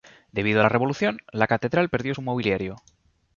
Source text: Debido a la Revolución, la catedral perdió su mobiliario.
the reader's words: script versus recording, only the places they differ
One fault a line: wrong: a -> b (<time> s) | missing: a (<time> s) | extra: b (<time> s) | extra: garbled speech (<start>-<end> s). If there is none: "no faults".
no faults